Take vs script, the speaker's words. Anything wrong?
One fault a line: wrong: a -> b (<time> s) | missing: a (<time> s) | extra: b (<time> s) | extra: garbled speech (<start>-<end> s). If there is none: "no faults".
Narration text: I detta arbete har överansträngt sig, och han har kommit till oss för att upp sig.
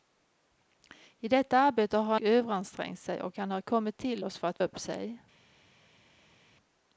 no faults